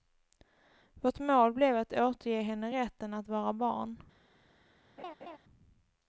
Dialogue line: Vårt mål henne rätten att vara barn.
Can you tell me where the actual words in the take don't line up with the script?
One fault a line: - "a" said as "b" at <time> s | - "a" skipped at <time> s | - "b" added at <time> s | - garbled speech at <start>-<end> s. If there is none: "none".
- "blev att återge" added at 1.5 s